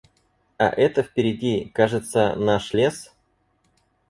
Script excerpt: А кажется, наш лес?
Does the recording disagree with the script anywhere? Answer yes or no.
yes